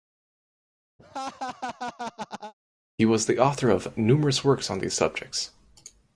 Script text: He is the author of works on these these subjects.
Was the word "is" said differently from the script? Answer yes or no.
yes